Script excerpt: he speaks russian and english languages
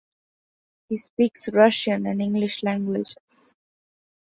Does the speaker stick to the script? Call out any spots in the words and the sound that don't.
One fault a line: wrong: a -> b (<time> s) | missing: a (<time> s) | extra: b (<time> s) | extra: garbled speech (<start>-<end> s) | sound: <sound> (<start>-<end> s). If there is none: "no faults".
no faults